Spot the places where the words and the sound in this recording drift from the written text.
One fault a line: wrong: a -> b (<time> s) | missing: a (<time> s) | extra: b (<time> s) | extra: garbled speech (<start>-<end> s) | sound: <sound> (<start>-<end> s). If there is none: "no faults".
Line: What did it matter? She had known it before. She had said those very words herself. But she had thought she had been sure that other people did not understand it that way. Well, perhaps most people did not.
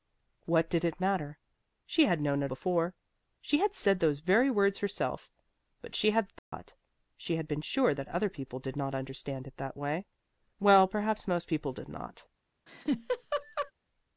sound: dropout (6.4-6.5 s)
sound: laugh (12.7-13.7 s)